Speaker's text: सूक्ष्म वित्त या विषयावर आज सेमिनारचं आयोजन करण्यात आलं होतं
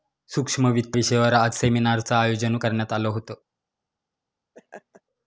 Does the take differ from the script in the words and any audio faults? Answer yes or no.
yes